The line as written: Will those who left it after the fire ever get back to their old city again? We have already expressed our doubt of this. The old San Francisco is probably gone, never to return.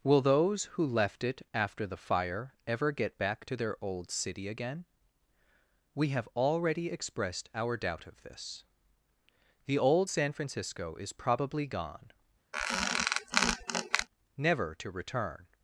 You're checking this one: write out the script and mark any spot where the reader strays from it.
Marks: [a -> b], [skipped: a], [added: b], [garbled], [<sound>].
Will those who left it after the fire ever get back to their old city again? We have already expressed our doubt of this. The old San Francisco is probably gone, [squeak] never to return.